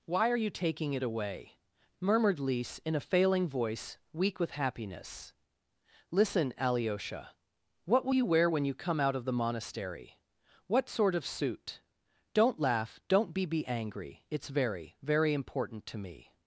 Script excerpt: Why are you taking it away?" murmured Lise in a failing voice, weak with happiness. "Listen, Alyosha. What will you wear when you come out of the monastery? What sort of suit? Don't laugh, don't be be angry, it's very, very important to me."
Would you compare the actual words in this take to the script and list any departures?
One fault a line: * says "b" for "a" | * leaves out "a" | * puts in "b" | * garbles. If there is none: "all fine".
all fine